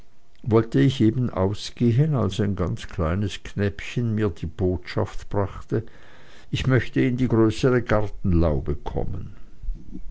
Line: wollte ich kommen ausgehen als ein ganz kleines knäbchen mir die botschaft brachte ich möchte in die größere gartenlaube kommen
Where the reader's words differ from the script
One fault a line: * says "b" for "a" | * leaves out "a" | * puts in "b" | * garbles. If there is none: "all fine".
* says "eben" for "kommen"